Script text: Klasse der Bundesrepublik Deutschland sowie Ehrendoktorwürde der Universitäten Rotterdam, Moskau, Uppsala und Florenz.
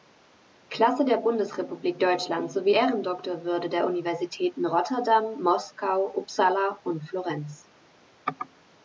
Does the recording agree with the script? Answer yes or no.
yes